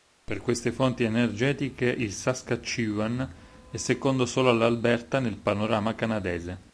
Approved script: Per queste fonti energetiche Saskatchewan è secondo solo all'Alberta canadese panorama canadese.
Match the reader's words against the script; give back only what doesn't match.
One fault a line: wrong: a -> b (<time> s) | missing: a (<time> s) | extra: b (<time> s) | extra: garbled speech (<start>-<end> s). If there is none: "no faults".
extra: il (1.9 s)
wrong: canadese -> nel (5.2 s)